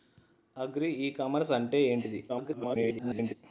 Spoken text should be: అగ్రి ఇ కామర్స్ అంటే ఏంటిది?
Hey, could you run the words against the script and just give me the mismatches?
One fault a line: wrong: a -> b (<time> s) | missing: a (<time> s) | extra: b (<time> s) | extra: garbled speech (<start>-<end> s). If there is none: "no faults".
extra: garbled speech (2.3-3.3 s)